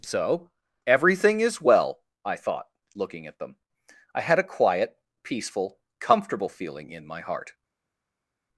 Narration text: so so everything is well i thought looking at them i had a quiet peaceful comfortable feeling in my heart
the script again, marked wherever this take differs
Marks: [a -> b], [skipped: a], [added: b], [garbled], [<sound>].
so [skipped: so] everything is well i thought looking at them i had a quiet peaceful comfortable feeling in my heart